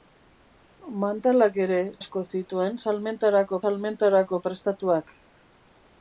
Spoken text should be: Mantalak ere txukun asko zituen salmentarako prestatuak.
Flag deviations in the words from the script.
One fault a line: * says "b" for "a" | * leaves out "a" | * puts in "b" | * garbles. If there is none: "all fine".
* leaves out "txukun"
* puts in "salmentarako"